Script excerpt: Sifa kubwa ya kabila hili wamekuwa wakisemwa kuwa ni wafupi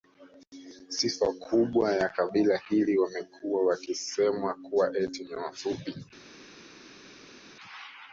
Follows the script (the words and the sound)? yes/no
no